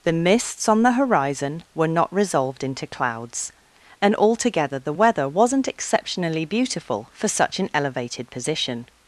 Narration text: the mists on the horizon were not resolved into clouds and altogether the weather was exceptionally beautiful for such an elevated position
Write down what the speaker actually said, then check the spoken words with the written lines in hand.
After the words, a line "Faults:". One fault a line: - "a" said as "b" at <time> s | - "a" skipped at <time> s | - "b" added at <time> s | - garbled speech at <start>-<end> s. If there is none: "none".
the mists on the horizon were not resolved into clouds and altogether the weather wasn't exceptionally beautiful for such an elevated position
Faults:
- "was" said as "wasn't" at 5.3 s